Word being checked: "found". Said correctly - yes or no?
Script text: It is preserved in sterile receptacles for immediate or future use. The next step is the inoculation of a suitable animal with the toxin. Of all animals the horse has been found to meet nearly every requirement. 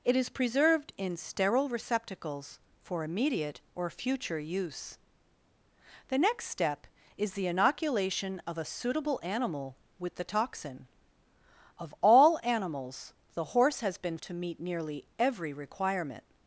no